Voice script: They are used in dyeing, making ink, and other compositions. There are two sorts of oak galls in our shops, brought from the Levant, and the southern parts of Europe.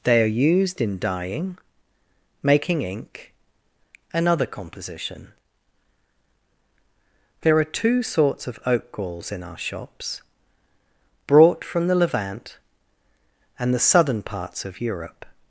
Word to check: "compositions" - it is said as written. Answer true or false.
false